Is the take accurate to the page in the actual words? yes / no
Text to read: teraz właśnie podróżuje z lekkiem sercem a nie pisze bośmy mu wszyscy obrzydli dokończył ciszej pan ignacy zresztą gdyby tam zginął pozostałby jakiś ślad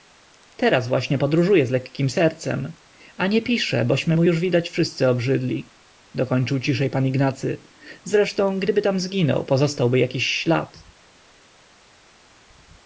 no